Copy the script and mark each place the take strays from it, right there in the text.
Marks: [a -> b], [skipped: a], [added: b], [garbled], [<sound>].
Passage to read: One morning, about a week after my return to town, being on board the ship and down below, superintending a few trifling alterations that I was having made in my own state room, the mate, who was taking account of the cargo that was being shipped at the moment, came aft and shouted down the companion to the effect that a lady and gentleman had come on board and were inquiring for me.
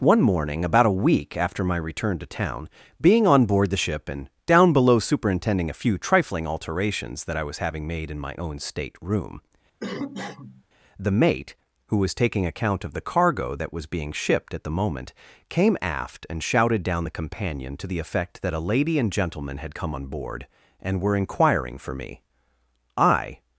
One morning, about a week after my return to town, being on board the ship and down below, superintending a few trifling alterations that I was having made in my own state room, [cough] the mate, who was taking account of the cargo that was being shipped at the moment, came aft and shouted down the companion to the effect that a lady and gentleman had come on board and were inquiring for me. [added: I]